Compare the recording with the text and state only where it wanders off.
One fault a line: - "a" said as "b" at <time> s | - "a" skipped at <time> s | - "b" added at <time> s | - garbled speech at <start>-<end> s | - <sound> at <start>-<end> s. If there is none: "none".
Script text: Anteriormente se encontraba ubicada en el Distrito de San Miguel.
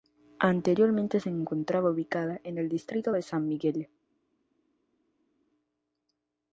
none